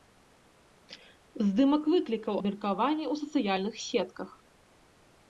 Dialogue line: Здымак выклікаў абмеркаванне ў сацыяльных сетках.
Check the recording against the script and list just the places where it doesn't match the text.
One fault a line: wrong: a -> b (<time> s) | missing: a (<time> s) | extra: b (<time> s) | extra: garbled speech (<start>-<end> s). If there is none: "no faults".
no faults